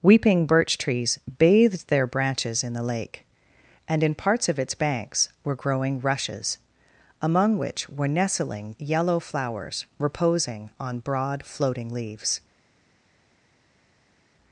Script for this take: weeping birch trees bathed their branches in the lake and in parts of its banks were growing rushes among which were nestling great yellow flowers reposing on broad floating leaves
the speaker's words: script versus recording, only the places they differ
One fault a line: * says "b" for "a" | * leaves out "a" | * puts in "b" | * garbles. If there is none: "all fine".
* leaves out "great"